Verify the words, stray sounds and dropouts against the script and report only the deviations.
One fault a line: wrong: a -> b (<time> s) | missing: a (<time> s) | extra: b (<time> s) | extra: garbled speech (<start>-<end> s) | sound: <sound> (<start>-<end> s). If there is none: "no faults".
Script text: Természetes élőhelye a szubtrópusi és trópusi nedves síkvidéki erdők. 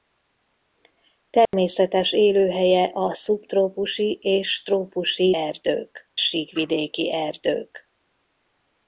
sound: dropout (1.5-1.5 s)
wrong: nedves -> erdők (5.3 s)